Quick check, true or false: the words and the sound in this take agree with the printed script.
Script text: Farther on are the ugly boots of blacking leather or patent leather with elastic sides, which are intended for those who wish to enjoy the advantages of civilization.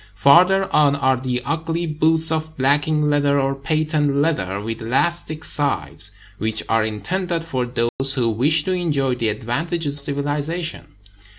false